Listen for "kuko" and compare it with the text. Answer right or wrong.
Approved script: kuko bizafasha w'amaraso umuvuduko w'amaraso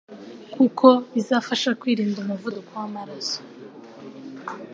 right